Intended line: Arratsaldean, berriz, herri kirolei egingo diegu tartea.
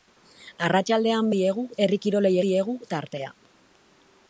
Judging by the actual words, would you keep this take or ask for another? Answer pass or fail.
fail